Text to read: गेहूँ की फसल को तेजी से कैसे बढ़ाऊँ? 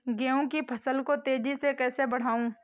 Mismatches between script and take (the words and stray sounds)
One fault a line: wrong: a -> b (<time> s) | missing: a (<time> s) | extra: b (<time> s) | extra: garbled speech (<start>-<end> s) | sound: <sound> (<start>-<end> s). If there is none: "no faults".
no faults